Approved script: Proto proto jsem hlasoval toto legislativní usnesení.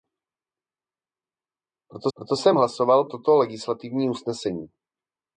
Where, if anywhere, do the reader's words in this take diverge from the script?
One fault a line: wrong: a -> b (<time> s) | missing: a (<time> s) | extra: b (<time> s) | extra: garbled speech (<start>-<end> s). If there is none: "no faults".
no faults